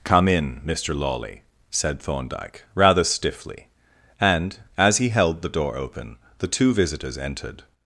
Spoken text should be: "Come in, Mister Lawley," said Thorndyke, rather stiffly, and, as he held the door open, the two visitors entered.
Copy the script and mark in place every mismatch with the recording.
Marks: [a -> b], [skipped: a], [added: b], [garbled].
"Come in, Mister Lawley," said Thorndyke, rather stiffly, and, as he held the door open, the two visitors entered.